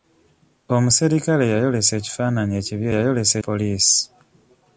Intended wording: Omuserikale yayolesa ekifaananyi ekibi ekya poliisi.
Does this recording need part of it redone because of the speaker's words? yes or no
yes